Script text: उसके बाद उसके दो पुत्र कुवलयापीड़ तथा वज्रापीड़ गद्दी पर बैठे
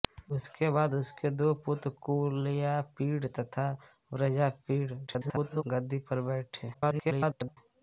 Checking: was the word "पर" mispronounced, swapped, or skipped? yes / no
no